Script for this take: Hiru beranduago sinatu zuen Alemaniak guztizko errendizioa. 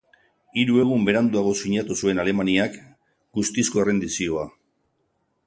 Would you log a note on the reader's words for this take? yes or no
yes